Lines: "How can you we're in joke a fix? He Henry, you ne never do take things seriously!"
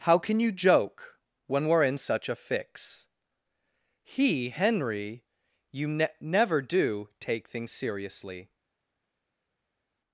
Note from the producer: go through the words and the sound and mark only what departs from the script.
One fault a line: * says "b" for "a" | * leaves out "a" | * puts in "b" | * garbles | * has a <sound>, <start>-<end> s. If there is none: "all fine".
* puts in "joke when"
* says "such" for "joke"